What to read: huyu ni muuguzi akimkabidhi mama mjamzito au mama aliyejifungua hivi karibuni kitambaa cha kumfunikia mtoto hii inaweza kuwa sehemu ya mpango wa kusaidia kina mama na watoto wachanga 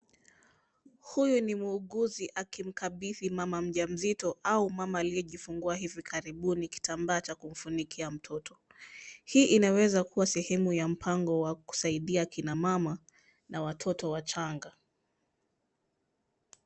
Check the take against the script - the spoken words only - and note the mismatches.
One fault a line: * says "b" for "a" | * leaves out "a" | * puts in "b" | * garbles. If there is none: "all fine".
all fine